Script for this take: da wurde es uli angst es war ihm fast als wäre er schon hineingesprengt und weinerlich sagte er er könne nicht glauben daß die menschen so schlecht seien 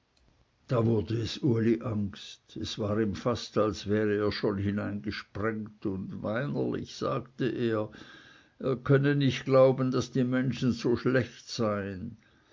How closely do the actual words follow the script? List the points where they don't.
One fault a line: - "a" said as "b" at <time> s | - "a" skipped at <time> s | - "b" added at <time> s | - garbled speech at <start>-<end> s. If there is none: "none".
none